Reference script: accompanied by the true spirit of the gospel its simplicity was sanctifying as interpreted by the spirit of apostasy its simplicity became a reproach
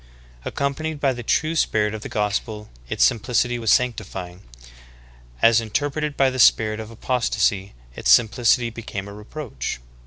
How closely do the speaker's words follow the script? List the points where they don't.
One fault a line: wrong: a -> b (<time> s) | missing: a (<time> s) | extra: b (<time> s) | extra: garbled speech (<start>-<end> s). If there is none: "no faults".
no faults